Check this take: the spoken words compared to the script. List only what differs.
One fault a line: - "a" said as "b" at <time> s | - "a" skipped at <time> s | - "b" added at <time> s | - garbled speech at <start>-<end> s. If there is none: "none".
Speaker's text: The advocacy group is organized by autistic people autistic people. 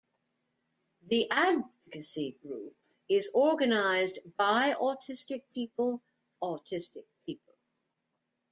none